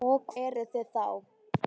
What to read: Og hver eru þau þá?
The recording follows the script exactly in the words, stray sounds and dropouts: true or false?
false